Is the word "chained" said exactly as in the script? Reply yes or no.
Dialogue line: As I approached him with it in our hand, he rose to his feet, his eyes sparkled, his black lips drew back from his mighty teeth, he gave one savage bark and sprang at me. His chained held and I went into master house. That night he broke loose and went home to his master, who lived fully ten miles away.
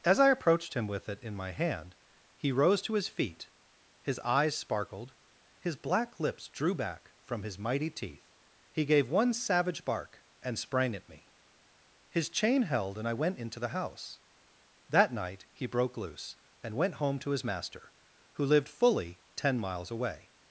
no